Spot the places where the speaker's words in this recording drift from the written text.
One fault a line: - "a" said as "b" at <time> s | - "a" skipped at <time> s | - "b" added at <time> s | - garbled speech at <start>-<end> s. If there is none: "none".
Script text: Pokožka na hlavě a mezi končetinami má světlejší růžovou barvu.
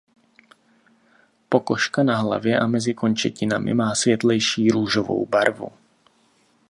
none